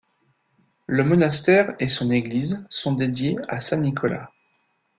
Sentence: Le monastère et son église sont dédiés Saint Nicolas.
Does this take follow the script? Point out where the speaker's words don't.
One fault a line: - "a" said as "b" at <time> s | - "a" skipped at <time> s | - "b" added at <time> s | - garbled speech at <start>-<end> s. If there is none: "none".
- "à" added at 3.5 s